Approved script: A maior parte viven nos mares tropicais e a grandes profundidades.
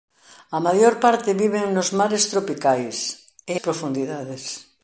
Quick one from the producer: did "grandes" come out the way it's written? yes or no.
no